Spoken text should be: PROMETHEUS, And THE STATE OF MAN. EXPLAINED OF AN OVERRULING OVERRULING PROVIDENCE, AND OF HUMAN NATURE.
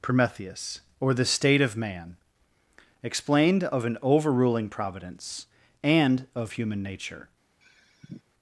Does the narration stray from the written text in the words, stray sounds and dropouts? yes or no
yes